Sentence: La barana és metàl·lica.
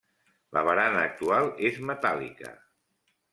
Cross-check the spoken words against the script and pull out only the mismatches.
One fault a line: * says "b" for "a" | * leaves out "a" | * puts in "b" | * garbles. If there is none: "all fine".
* puts in "actual"